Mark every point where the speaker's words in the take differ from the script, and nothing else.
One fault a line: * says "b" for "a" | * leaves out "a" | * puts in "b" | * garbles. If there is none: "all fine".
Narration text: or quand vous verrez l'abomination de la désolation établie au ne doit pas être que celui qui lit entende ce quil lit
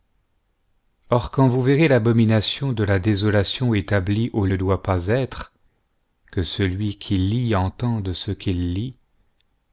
all fine